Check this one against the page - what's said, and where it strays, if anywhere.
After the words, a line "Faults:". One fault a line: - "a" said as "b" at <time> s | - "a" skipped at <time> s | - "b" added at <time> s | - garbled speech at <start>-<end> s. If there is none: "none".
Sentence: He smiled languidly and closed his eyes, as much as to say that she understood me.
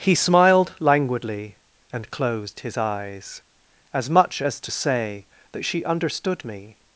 He smiled languidly and closed his eyes, as much as to say that she understood me.
Faults:
none